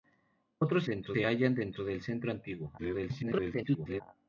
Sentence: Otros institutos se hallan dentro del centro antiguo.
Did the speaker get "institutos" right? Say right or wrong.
wrong